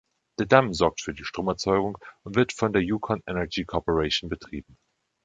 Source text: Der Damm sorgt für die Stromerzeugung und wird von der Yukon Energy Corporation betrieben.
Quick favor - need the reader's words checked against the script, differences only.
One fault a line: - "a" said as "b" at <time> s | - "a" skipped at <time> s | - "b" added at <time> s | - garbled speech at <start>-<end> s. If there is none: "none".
none